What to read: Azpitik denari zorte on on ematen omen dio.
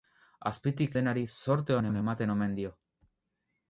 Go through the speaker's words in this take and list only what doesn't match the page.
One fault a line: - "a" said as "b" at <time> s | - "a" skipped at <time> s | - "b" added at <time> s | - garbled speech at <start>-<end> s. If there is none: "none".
none